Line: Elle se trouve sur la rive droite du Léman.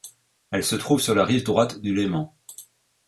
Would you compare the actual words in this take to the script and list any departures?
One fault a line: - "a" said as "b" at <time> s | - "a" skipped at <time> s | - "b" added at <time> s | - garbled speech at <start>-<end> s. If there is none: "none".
none